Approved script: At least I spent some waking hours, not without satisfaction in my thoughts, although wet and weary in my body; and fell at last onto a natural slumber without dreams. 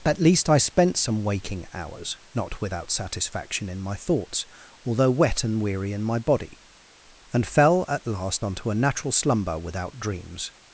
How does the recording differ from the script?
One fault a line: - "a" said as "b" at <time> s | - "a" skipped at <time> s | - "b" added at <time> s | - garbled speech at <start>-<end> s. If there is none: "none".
none